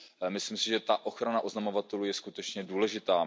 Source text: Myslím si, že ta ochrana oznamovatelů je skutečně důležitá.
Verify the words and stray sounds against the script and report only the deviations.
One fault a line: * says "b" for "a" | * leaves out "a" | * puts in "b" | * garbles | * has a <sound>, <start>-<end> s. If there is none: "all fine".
all fine